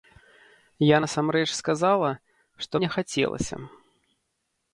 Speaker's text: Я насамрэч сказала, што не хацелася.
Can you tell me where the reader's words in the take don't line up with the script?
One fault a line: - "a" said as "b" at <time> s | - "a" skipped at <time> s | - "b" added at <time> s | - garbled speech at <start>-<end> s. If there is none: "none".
none